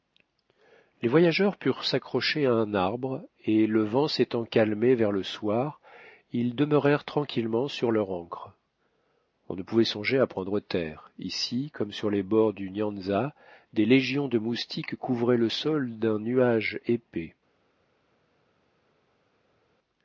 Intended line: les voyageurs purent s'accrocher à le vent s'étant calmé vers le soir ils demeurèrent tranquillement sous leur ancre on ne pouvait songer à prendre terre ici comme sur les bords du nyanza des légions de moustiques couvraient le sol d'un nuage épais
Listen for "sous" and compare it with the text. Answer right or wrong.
wrong